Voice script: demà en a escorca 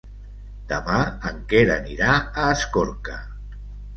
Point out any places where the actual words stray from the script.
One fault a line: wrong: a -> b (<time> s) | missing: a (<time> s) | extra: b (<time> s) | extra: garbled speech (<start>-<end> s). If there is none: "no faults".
extra: quer anirà (1.5 s)